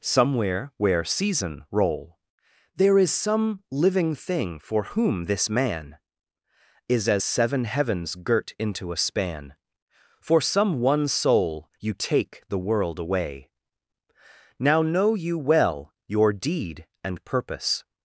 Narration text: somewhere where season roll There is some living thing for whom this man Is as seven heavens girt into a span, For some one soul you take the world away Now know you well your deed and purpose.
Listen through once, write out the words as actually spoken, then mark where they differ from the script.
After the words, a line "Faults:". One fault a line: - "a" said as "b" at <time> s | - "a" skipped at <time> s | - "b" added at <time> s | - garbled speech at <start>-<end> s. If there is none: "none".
somewhere where season roll There is some living thing for whom this man Is as seven heavens girt into a span, For some one soul you take the world away Now know you well your deed and purpose.
Faults:
none